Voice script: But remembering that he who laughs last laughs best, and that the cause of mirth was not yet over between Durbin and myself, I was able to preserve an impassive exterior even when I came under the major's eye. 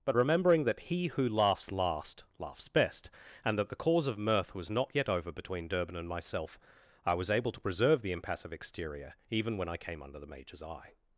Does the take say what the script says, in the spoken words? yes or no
no